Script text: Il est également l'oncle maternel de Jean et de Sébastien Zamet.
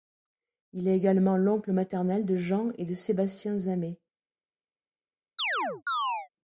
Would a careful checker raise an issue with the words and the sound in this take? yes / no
yes